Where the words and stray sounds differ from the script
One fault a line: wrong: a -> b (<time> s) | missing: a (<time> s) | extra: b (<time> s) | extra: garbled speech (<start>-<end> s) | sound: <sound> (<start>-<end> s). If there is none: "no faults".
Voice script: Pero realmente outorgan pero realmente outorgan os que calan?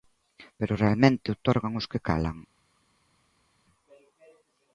missing: pero realmente outorgan (1.7 s)